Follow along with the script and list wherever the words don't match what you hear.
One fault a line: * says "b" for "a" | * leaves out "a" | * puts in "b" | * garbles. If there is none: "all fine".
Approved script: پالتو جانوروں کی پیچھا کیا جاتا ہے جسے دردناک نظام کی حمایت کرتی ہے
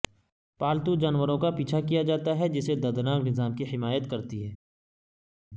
* says "کا" for "کی"